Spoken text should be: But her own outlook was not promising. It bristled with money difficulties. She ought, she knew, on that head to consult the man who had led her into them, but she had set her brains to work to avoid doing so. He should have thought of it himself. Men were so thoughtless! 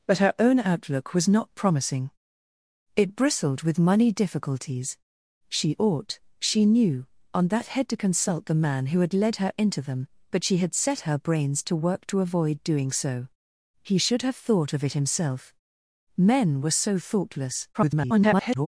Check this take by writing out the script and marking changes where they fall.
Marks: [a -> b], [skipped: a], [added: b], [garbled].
But her own outlook was not promising. It bristled with money difficulties. She ought, she knew, on that head to consult the man who had led her into them, but she had set her brains to work to avoid doing so. He should have thought of it himself. Men were so thoughtless! [garbled]